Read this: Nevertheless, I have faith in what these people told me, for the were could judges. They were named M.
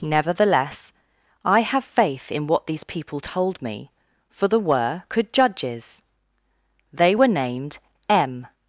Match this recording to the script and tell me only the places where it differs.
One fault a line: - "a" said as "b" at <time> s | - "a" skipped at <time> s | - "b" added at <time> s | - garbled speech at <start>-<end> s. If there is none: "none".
none